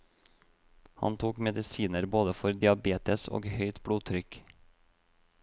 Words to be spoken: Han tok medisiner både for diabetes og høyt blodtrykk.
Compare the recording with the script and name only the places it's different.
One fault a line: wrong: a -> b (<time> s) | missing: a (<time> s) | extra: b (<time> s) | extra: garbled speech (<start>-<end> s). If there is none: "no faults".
no faults